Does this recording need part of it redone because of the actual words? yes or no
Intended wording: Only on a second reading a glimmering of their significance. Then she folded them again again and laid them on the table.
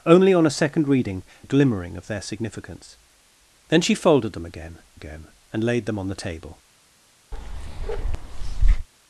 no